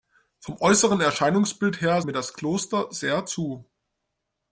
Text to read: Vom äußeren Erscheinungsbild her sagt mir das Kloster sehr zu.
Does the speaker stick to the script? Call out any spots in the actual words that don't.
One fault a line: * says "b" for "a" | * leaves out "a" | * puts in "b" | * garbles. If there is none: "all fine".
* leaves out "sagt"